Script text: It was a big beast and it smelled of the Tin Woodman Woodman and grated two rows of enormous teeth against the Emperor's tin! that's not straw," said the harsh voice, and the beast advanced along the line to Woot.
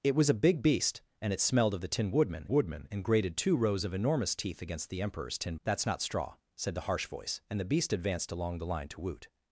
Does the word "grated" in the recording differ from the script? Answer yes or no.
no